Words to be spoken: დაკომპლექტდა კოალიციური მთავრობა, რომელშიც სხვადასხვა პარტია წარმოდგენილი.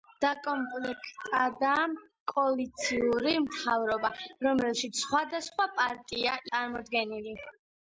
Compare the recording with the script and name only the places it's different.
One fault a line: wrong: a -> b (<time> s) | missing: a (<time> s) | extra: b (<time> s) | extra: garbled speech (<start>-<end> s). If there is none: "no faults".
no faults